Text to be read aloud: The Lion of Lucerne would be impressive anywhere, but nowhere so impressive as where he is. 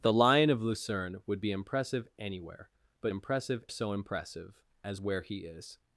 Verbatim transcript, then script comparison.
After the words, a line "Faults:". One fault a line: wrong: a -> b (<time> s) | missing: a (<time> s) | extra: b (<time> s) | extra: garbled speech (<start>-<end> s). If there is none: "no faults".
The Lion of Lucerne would be impressive anywhere, but impressive so impressive as where he is.
Faults:
wrong: nowhere -> impressive (3.1 s)